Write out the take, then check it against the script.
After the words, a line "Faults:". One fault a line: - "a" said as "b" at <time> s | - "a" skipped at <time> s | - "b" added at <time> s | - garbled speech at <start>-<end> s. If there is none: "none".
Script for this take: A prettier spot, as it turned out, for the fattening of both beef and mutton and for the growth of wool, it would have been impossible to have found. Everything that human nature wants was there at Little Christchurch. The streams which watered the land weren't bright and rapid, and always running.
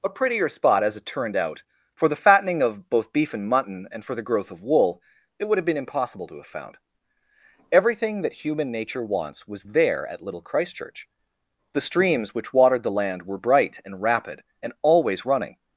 A prettier spot, as it turned out, for the fattening of both beef and mutton and for the growth of wool, it would have been impossible to have found. Everything that human nature wants was there at Little Christchurch. The streams which watered the land were bright and rapid, and always running.
Faults:
- "weren't" said as "were" at 13.2 s